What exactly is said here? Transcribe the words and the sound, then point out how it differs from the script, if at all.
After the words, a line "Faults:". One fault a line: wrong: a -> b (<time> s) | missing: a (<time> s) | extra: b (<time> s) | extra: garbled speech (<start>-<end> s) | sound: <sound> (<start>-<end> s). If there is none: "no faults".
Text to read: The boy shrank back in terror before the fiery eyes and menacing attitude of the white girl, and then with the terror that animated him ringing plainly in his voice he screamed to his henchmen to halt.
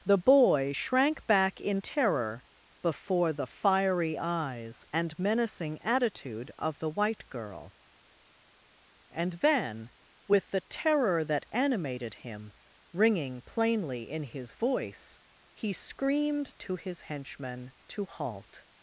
The boy shrank back in terror before the fiery eyes and menacing attitude of the white girl, and then with the terror that animated him ringing plainly in his voice he screamed to his henchmen to halt.
Faults:
no faults